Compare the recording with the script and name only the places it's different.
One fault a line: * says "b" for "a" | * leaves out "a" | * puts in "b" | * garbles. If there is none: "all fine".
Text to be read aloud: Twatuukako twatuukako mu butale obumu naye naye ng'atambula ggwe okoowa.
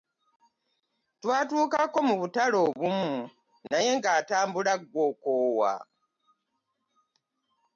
* leaves out "twatuukako"
* leaves out "naye"